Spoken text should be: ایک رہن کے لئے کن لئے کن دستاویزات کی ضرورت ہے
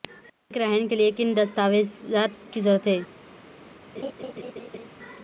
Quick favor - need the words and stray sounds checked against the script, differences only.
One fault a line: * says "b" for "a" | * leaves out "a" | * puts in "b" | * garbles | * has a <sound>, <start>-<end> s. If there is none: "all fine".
* leaves out "لئے کن"
* has a laugh, 3.9-4.9 s